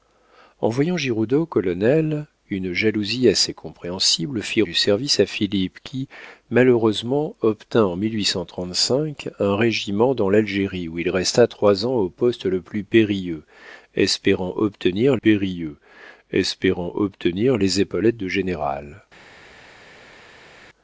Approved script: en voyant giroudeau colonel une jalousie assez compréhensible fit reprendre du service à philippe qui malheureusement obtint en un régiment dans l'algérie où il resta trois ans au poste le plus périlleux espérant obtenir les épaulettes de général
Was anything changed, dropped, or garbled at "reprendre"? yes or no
yes